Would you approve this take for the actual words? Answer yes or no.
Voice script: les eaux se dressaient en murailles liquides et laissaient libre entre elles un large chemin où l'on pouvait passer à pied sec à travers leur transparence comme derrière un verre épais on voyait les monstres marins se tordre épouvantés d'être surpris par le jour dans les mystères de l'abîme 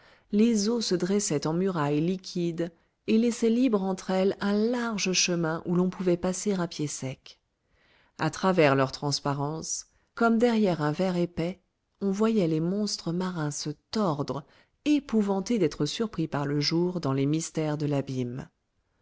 yes